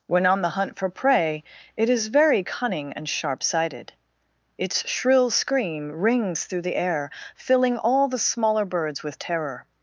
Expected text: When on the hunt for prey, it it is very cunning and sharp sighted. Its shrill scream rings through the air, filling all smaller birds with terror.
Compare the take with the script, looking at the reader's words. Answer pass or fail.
fail